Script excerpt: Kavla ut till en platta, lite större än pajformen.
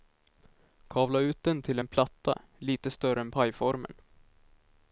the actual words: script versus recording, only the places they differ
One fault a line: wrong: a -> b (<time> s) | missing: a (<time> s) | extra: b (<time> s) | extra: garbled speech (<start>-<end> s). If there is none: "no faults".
extra: den (1.4 s)